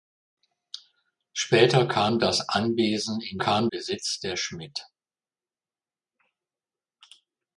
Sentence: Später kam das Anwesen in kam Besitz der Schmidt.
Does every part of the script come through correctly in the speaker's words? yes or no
yes